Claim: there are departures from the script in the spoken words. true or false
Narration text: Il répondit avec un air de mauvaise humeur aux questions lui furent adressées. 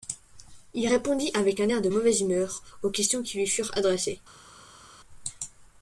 true